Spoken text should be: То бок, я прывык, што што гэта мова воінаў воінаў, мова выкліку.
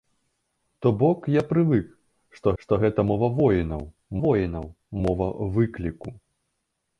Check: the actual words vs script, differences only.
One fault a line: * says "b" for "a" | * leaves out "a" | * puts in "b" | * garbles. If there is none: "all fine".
all fine